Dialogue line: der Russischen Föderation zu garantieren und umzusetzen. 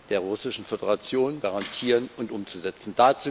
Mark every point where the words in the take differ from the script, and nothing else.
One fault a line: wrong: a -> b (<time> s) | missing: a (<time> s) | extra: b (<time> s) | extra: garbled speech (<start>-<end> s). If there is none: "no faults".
missing: zu (1.4 s)